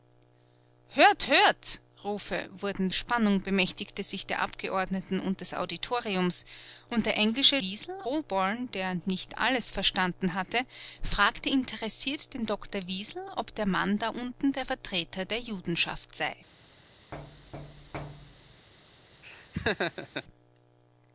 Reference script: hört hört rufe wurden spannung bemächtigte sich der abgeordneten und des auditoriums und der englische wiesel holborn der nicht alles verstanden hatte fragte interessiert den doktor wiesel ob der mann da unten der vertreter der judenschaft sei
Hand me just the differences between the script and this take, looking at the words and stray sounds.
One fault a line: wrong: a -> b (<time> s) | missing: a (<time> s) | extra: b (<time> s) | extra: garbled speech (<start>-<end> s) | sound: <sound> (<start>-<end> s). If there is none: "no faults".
sound: thud (17.1-18.7 s)
sound: laugh (19.2-20.2 s)